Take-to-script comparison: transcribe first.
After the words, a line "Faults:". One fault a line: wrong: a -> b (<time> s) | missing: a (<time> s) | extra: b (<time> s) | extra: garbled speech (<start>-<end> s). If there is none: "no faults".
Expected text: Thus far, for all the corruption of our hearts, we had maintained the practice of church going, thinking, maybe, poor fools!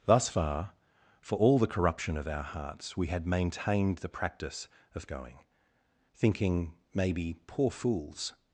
Thus far, for all the corruption of our hearts, we had maintained the practice of going, thinking, maybe, poor fools!
Faults:
missing: church (5.1 s)